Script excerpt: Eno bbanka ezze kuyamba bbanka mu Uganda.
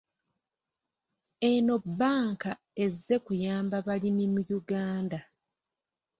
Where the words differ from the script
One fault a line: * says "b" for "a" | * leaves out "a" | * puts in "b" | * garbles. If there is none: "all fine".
* says "balimi" for "bbanka"